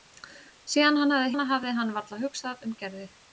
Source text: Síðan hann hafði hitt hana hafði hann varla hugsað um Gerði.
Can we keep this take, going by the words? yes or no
no